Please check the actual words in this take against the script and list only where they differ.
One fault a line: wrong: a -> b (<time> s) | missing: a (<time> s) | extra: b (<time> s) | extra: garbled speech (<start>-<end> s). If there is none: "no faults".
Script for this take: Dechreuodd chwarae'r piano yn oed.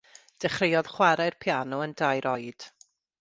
extra: dair (2.0 s)